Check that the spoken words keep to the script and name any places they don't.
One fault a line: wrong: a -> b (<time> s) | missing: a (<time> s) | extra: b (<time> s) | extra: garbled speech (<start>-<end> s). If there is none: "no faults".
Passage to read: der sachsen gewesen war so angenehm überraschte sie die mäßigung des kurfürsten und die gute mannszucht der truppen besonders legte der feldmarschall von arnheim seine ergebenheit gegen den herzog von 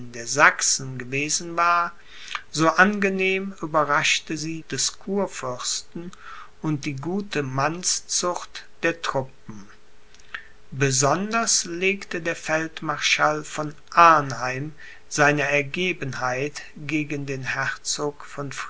missing: die mäßigung (4.6 s)